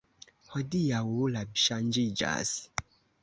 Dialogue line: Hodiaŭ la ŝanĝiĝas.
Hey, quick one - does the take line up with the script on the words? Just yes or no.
yes